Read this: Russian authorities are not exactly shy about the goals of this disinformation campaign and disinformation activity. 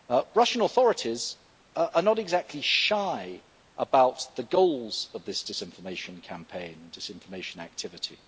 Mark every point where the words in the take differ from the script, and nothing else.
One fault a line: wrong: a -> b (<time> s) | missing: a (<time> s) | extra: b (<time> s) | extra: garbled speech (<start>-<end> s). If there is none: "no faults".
no faults